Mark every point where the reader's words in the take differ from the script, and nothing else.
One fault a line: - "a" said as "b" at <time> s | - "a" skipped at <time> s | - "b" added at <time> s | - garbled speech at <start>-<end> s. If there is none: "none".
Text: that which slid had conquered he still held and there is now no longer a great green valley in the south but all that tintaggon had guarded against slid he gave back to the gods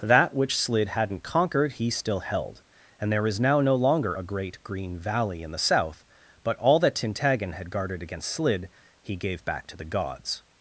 - "had" said as "hadn't" at 0.9 s